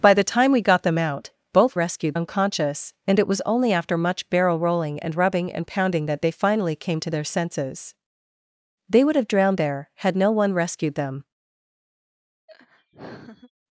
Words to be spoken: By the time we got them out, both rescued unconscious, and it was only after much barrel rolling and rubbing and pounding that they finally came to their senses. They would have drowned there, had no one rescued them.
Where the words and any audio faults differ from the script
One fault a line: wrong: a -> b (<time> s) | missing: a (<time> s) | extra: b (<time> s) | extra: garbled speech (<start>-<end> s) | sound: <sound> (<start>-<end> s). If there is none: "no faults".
sound: laugh (12.5-13.5 s)